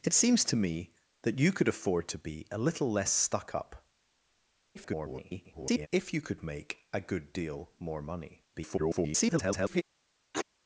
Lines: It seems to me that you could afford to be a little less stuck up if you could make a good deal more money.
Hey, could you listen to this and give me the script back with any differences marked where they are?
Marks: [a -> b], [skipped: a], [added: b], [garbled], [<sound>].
It seems to me that you could afford to be a little less stuck up [garbled] if you could make a good deal more money. [garbled] [sneeze]